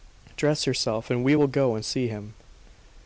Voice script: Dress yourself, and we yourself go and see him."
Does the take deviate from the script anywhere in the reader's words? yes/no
yes